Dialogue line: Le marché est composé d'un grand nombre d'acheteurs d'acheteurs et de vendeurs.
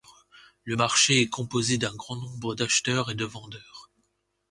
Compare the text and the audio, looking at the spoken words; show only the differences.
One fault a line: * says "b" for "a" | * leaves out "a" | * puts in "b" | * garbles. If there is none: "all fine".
* leaves out "d'acheteurs"